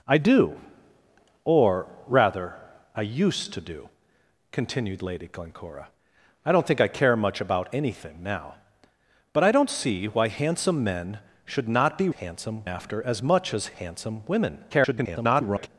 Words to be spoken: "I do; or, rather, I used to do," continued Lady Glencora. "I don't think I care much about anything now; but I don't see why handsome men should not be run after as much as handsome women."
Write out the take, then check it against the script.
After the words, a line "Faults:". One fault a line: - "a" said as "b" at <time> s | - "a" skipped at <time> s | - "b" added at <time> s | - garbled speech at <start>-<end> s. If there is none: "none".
"I do; or, rather, I used to do," continued Lady Glencora. "I don't think I care much about anything now; but I don't see why handsome men should not be handsome after as much as handsome women." [garbled]
Faults:
- "run" said as "handsome" at 12.1 s
- garbled speech at 14.7-15.7 s